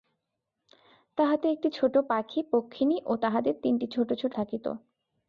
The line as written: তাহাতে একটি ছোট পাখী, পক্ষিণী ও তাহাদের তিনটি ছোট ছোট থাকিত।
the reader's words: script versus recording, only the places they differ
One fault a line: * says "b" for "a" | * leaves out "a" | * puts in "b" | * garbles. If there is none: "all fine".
all fine